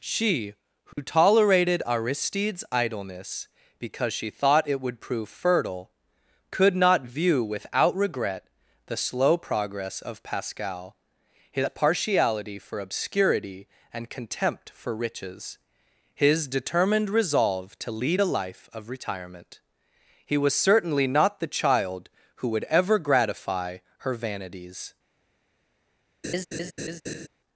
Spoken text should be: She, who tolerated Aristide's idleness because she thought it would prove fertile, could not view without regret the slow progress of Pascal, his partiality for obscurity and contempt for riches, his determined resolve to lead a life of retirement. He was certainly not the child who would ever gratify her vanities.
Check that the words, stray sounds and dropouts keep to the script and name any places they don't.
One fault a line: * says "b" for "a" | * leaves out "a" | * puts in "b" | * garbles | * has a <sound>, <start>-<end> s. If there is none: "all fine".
* has a dropout, 0.9-1.0 s
* has a laugh, 26.2-27.3 s